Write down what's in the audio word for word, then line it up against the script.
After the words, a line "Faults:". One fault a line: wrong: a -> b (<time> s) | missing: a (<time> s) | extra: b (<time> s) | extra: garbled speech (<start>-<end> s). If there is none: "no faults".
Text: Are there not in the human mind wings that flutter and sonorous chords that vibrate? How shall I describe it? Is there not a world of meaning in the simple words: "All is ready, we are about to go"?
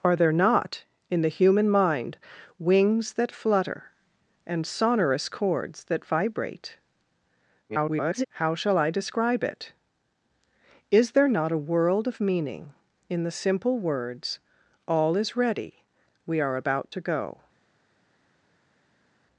Are there not in the human mind wings that flutter and sonorous chords that vibrate? [garbled] How shall I describe it? Is there not a world of meaning in the simple words: "All is ready, we are about to go"?
Faults:
extra: garbled speech (7.7-8.2 s)